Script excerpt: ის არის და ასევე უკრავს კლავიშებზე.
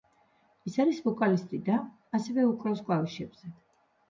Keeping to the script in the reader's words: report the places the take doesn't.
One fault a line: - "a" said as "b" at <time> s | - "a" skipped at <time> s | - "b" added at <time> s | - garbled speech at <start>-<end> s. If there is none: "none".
- "ვოკალისტი" added at 1.1 s